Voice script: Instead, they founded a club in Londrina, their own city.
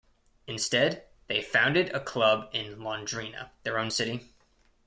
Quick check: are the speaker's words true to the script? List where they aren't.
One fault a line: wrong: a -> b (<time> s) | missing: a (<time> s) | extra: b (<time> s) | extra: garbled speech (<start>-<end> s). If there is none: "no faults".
no faults